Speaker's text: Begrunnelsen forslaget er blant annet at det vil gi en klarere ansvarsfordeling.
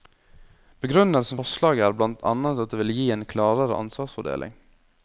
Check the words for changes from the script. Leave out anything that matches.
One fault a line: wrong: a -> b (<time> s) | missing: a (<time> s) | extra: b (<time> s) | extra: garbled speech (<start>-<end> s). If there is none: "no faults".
no faults